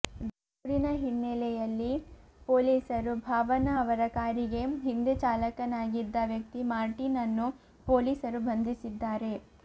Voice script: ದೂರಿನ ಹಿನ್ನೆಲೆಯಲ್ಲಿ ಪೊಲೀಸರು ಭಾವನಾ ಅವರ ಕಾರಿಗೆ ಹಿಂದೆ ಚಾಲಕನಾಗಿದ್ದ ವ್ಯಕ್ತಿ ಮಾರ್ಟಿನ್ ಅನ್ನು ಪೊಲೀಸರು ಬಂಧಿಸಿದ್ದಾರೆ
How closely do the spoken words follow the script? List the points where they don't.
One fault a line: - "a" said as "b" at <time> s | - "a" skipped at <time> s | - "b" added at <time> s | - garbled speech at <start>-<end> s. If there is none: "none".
none